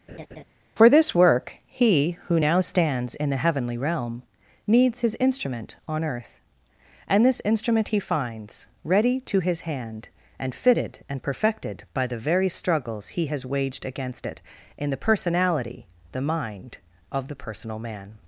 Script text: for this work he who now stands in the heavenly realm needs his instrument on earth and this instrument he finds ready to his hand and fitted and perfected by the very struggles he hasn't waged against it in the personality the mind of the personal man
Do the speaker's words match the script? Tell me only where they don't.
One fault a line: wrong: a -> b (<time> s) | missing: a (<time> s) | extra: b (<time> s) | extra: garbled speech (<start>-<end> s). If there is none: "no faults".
wrong: hasn't -> has (13.3 s)